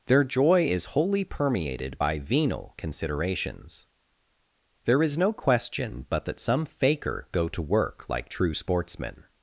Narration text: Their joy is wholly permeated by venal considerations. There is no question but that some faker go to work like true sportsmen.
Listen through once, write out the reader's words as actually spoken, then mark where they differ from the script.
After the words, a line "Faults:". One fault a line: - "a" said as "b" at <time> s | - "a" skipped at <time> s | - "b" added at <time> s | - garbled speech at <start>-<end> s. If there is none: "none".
Their joy is wholly permeated by venal considerations. There is no question but that some faker go to work like true sportsmen.
Faults:
none